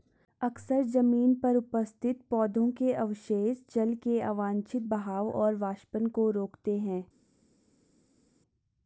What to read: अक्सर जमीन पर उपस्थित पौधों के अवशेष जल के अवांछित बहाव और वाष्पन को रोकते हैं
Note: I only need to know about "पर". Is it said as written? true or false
true